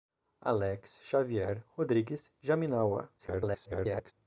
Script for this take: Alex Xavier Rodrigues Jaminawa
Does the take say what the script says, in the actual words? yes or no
no